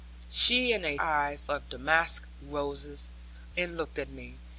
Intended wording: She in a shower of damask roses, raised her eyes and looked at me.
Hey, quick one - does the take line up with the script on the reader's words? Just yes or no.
no